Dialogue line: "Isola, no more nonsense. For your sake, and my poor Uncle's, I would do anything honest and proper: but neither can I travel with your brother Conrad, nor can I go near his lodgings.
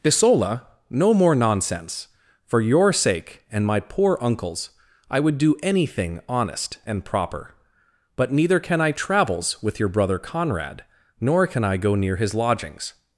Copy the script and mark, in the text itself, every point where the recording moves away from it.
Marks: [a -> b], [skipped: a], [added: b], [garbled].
"Isola, no more nonsense. For your sake, and my poor Uncle's, I would do anything honest and proper: but neither can I [travel -> travels] with your brother Conrad, nor can I go near his lodgings.